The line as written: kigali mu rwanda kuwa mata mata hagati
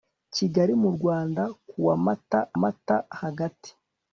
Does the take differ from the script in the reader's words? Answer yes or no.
no